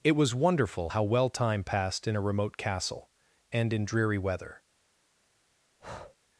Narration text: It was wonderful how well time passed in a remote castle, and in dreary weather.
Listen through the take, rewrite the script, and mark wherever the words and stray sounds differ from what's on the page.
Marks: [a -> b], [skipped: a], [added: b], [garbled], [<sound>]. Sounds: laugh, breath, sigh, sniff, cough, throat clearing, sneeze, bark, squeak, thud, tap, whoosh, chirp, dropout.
It was wonderful how well time passed in a remote castle, and in dreary weather. [breath]